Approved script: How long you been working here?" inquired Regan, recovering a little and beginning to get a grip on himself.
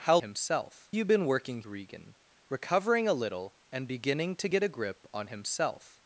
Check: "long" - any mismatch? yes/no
yes